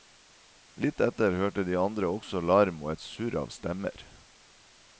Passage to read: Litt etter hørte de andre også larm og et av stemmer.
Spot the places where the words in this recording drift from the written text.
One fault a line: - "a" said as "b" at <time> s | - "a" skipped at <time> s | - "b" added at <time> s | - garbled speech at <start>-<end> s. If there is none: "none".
- "surr" added at 3.0 s